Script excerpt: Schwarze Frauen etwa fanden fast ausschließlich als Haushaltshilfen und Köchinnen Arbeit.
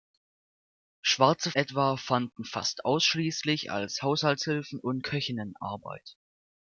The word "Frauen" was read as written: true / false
false